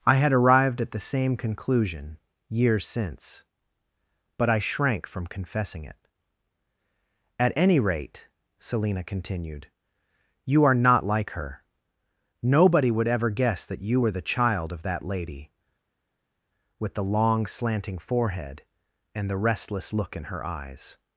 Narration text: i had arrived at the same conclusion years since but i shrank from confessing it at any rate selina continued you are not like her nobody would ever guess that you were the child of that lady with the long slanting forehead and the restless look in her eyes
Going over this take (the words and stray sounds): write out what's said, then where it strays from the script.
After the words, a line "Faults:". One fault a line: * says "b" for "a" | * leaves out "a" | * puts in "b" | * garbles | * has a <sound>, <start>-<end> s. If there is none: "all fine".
i had arrived at the same conclusion years since but i shrank from confessing it at any rate selina continued you are not like her nobody would ever guess that you were the child of that lady with the long slanting forehead and the restless look in her eyes
Faults:
all fine